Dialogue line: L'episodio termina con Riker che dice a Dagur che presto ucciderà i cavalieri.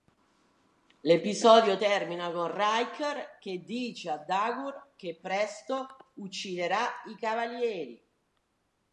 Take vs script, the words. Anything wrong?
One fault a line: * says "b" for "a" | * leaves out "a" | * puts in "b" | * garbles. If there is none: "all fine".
all fine